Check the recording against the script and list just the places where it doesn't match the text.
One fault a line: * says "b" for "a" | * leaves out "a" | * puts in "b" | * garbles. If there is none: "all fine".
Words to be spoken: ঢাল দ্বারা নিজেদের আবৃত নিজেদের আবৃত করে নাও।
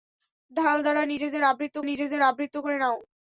all fine